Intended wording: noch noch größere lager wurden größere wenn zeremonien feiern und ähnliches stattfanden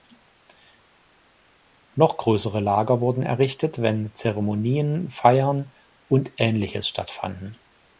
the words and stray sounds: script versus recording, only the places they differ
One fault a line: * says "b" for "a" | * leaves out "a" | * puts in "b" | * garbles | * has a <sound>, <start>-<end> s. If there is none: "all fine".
* leaves out "noch"
* says "errichtet" for "größere"